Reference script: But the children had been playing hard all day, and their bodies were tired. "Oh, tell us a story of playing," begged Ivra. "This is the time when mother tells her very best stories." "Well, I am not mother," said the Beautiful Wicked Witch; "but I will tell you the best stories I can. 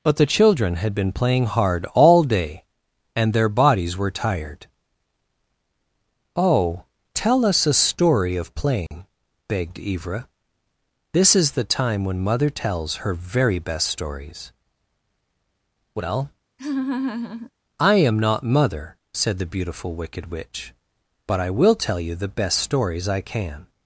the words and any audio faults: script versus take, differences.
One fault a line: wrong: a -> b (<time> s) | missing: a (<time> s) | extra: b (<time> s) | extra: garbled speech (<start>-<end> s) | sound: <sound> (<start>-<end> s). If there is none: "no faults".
sound: dropout (8.9-8.9 s)
sound: laugh (16.6-17.5 s)